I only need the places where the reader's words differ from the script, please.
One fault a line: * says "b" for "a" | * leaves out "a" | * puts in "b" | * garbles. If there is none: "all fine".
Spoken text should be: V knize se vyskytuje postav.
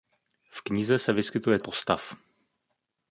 all fine